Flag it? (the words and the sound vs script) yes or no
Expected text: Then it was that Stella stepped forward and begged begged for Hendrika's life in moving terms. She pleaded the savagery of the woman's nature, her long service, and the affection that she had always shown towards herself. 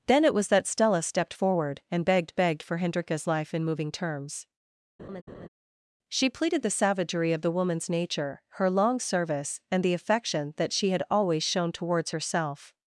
yes